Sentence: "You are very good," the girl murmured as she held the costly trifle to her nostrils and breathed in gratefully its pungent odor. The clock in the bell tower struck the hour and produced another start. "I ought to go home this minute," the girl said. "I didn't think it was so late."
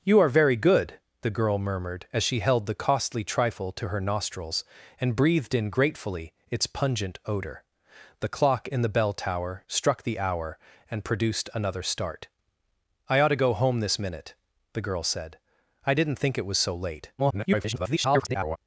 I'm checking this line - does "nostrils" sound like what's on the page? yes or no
yes